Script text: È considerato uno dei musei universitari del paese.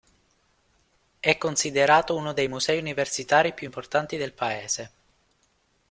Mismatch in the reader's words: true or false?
true